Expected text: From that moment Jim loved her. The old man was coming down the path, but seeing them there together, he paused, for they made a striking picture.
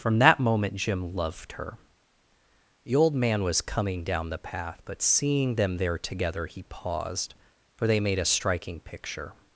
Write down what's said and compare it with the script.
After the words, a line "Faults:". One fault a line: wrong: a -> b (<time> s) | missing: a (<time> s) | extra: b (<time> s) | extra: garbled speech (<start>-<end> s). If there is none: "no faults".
From that moment Jim loved her. The old man was coming down the path, but seeing them there together, he paused, for they made a striking picture.
Faults:
no faults